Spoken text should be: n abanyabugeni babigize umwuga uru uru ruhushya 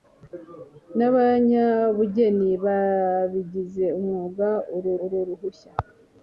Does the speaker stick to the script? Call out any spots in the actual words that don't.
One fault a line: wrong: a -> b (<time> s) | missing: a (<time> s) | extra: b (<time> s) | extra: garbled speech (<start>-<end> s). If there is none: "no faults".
no faults